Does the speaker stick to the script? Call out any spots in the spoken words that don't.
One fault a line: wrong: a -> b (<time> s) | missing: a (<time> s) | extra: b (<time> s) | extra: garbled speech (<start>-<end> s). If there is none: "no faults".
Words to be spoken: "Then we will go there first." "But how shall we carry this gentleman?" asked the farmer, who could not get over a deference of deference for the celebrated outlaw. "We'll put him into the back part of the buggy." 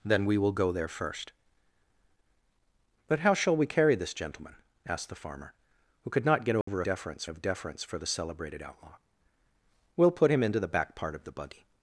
no faults